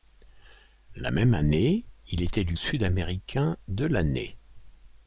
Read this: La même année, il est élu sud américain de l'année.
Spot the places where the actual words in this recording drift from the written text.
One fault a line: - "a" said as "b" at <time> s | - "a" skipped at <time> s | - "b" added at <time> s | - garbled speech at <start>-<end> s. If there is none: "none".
none